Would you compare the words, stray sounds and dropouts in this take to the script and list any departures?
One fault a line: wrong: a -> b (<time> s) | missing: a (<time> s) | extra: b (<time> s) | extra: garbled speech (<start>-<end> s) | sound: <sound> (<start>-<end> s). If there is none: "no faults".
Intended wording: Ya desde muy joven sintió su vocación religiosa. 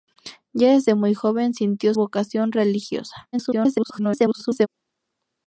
missing: su (1.9 s)
extra: garbled speech (3.3-4.7 s)